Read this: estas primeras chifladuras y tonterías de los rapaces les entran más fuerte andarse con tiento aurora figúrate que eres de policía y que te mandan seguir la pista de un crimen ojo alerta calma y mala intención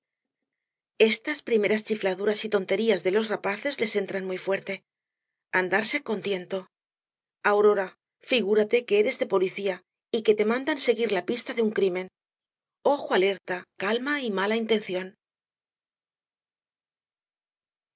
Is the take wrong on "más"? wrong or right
wrong